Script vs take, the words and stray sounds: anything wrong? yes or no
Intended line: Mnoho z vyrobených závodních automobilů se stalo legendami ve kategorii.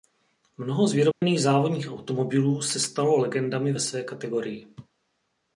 yes